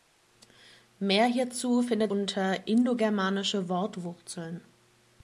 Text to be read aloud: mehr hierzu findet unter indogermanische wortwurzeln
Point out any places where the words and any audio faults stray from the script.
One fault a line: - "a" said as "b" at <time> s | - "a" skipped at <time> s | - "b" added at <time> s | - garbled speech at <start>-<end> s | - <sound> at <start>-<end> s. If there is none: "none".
none